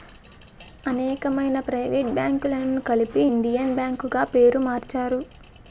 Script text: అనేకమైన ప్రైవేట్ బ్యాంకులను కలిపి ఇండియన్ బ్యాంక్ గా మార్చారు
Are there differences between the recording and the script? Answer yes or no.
yes